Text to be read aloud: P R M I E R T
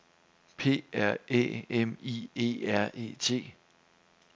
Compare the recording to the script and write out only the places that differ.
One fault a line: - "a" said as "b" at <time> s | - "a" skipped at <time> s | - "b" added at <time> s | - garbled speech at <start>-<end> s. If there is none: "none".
- "Æ" added at 1.3 s
- "E" added at 3.0 s